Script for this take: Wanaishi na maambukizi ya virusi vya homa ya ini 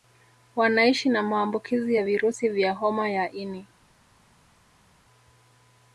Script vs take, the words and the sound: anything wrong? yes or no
no